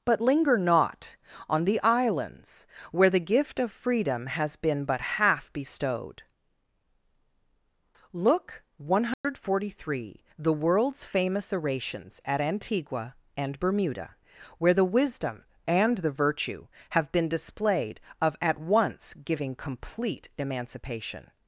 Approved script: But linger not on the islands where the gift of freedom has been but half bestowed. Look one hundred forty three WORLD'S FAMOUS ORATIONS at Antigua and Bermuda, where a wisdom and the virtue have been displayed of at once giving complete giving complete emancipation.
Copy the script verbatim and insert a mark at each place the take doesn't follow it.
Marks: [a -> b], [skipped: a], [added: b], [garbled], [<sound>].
But linger not on the islands where the gift of freedom has been but half bestowed. Look one hundred [dropout] forty three [added: THE] WORLD'S FAMOUS ORATIONS at Antigua and Bermuda, where [a -> the] wisdom and the virtue have been displayed of at once giving complete [skipped: giving complete] emancipation.